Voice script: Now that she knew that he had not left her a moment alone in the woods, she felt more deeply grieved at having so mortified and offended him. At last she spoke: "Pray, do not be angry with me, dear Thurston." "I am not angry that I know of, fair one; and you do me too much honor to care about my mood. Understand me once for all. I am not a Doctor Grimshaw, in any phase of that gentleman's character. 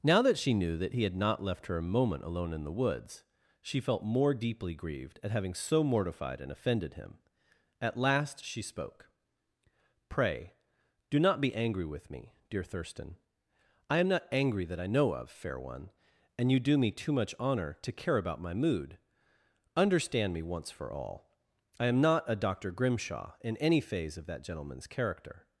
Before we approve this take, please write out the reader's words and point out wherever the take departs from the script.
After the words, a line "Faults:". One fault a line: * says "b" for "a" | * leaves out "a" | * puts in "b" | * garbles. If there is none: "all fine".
Now that she knew that he had not left her a moment alone in the woods, she felt more deeply grieved at having so mortified and offended him. At last she spoke: "Pray, do not be angry with me, dear Thurston." "I am not angry that I know of, fair one; and you do me too much honor to care about my mood. Understand me once for all. I am not a Doctor Grimshaw, in any phase of that gentleman's character.
Faults:
all fine